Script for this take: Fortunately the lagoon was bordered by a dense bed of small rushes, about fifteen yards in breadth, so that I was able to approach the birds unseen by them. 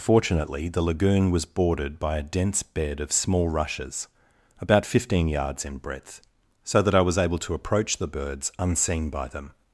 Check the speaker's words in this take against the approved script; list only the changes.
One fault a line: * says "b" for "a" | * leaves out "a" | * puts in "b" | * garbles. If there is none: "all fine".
all fine